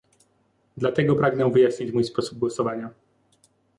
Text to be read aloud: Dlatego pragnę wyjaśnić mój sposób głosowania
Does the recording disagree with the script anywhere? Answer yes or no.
no